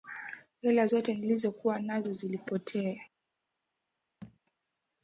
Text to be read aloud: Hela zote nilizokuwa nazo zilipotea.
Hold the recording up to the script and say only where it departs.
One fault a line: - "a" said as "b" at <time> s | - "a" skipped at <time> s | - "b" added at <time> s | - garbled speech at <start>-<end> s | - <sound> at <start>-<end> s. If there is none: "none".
- thud at 4.2-4.4 s